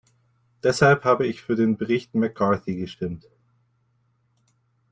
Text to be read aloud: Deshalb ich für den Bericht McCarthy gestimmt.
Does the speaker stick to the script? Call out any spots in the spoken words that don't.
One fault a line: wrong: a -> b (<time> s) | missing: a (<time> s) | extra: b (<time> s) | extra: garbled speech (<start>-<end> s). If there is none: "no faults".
extra: habe (1.0 s)